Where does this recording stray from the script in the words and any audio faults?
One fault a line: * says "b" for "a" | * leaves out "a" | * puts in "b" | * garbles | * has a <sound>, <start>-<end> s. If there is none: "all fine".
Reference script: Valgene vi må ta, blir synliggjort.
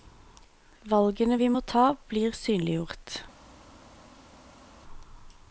all fine